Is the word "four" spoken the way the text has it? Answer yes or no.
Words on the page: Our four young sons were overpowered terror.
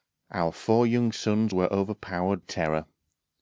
yes